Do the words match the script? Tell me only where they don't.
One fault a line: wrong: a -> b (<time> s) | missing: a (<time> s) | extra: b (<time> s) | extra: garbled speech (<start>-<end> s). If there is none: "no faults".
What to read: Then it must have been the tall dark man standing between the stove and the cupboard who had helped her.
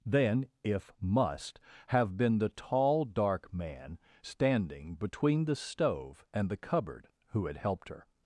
wrong: it -> if (0.6 s)